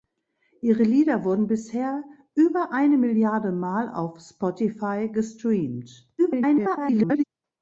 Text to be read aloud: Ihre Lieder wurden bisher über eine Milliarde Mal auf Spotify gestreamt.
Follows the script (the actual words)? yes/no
no